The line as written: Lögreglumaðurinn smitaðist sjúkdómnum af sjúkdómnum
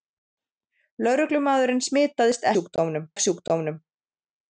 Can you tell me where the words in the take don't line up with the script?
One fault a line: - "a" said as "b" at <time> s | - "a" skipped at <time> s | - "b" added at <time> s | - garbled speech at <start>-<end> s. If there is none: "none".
none